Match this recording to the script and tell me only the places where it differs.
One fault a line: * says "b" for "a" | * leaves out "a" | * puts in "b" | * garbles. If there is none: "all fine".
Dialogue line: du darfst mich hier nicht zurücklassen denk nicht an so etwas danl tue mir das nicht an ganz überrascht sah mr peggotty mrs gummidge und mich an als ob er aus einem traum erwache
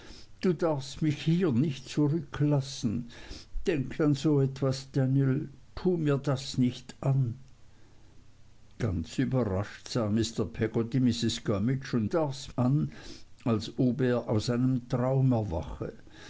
* leaves out "nicht"
* says "darfst" for "mich"